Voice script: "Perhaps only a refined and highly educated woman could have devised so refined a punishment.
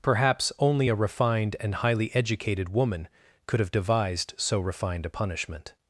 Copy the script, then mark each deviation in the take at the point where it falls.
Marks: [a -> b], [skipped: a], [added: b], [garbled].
"Perhaps only a refined and highly educated woman could have devised so refined a punishment.